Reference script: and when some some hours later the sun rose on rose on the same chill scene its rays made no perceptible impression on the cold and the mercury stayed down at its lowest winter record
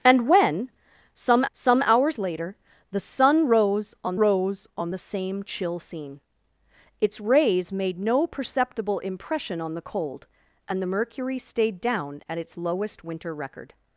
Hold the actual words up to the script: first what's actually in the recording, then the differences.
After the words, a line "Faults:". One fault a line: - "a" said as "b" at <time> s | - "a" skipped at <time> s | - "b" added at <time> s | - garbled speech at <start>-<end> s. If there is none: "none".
and when some some hours later the sun rose on rose on the same chill scene its rays made no perceptible impression on the cold and the mercury stayed down at its lowest winter record
Faults:
none